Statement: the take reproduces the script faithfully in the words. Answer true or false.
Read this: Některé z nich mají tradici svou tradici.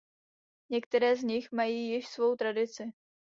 false